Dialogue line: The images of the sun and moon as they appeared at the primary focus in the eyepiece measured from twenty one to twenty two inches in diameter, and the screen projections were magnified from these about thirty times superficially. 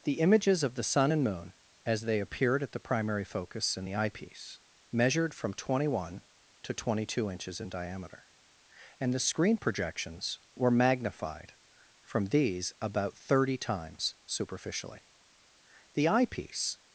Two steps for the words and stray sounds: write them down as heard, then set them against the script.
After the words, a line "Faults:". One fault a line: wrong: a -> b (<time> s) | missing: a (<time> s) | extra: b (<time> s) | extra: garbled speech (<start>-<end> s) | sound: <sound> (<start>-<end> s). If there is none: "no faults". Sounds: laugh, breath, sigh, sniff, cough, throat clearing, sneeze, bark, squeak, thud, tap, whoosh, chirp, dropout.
The images of the sun and moon as they appeared at the primary focus in the eyepiece measured from twenty one to twenty two inches in diameter, and the screen projections were magnified from these about thirty times superficially. The eyepiece
Faults:
extra: The eyepiece (15.9 s)